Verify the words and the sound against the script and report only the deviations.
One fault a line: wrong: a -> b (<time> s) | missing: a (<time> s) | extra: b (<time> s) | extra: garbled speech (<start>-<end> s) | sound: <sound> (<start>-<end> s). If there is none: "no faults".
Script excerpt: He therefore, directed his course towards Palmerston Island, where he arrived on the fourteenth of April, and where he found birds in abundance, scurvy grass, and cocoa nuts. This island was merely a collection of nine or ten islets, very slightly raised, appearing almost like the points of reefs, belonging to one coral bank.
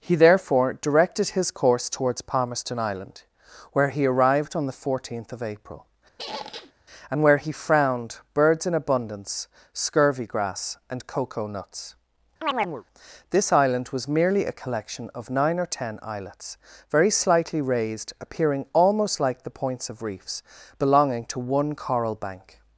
sound: squeak (6.2-6.7 s)
wrong: found -> frowned (7.5 s)
sound: chirp (12.4-12.8 s)